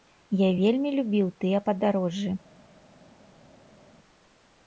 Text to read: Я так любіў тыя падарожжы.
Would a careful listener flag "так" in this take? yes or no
yes